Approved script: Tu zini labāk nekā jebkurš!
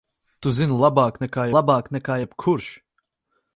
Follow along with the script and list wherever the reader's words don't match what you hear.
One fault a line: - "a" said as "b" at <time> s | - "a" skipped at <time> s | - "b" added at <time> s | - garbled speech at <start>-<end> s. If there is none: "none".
- "labāk nekā" added at 1.6 s